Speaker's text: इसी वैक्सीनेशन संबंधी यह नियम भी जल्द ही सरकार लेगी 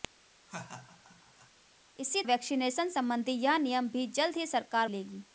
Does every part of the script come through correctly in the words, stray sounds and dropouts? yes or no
no